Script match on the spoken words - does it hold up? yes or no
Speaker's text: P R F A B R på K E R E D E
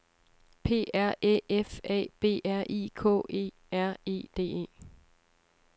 no